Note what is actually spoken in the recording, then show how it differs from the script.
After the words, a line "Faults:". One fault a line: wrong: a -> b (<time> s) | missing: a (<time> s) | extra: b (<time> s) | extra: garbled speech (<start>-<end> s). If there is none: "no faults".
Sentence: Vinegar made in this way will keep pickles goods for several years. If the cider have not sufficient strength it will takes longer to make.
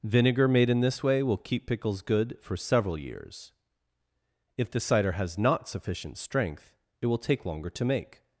Vinegar made in this way will keep pickles good for several years. If the cider has not sufficient strength it will take longer to make.
Faults:
wrong: goods -> good (2.0 s)
wrong: have -> has (5.1 s)
wrong: takes -> take (7.2 s)